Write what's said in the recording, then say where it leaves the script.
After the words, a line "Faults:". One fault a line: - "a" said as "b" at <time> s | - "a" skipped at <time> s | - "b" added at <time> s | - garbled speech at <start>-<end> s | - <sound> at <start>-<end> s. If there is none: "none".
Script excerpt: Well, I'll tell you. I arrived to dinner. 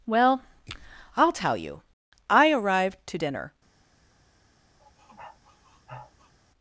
Well, I'll tell you. I arrived to dinner.
Faults:
- sniff at 4.8-6.3 s